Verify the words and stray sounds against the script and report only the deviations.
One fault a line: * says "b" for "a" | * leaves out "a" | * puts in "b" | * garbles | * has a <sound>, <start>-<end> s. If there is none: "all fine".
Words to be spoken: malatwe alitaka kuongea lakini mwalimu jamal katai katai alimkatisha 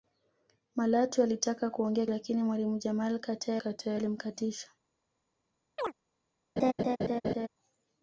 * has a chirp, 5.8-5.9 s
* has a laugh, 6.6-7.5 s